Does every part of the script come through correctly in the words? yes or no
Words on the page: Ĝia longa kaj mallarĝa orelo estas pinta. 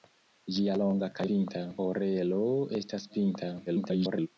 no